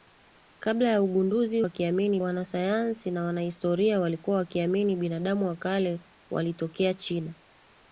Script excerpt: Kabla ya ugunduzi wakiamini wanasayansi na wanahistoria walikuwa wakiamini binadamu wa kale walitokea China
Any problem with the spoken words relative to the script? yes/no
no